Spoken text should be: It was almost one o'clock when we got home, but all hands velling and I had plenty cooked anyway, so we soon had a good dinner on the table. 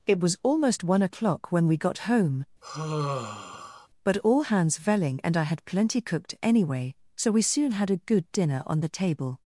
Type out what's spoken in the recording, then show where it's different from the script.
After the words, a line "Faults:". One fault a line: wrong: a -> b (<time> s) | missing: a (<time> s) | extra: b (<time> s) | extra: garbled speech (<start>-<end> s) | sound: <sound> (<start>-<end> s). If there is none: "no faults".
It was almost one o'clock when we got home, but all hands velling and I had plenty cooked anyway, so we soon had a good dinner on the table.
Faults:
sound: sigh (2.6-3.9 s)